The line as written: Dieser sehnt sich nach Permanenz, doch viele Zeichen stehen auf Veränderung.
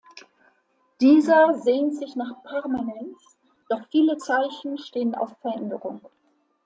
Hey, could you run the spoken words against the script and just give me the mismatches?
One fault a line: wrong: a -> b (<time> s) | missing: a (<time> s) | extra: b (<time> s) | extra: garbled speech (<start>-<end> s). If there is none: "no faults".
no faults